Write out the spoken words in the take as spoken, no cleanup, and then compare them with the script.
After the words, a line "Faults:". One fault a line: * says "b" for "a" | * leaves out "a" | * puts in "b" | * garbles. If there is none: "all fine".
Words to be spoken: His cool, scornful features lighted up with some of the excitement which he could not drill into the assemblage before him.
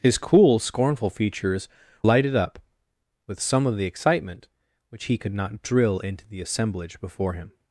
His cool, scornful features lighted up with some of the excitement which he could not drill into the assemblage before him.
Faults:
all fine